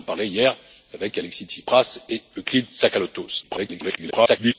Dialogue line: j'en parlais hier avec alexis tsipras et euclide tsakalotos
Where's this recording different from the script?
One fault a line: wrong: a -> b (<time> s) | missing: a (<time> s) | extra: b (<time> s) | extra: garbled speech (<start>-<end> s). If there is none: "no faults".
extra: garbled speech (3.4-4.5 s)